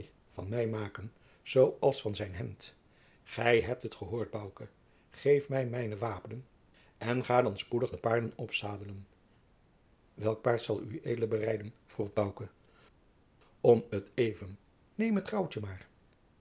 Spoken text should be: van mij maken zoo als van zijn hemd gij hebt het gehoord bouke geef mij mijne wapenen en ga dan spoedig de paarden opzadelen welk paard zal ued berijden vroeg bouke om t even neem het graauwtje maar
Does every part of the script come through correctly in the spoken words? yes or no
yes